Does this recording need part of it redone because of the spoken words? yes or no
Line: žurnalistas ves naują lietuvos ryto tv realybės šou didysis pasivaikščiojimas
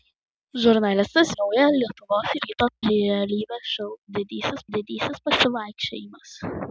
yes